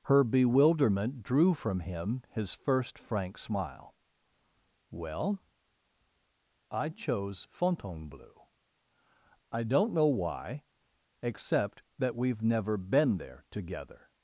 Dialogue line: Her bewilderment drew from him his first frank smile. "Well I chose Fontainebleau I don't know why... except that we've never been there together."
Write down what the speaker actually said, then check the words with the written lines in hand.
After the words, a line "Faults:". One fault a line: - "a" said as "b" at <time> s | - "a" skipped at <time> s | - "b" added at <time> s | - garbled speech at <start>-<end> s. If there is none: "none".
Her bewilderment drew from him his first frank smile. "Well I chose Fontainebleau I don't know why... except that we've never been there together."
Faults:
none